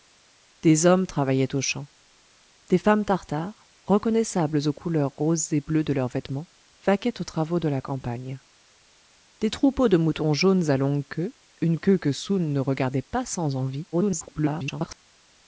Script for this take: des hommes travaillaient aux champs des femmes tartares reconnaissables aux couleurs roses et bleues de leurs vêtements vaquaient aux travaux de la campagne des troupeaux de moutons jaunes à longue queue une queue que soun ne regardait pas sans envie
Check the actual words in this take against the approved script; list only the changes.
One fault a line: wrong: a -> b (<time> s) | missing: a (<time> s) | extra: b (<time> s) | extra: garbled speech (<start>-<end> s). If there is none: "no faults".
extra: garbled speech (13.9-15.0 s)